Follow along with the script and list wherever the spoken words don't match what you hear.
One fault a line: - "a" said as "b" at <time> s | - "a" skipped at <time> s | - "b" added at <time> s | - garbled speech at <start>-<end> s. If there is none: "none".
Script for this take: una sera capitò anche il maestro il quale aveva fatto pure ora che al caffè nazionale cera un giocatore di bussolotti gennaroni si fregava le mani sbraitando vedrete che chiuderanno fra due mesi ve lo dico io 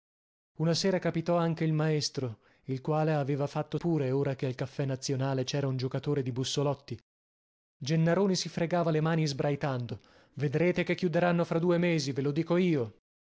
none